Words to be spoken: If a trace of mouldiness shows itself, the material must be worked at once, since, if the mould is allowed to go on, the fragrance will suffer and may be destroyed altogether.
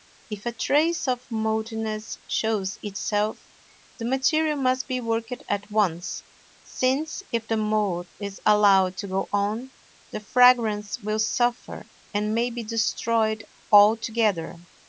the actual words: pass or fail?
pass